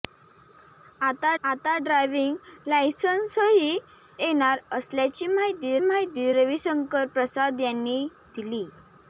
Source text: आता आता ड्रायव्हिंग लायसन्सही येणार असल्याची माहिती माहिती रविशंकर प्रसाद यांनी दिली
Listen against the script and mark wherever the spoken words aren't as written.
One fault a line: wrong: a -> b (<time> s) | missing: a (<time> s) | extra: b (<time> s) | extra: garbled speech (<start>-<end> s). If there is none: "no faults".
no faults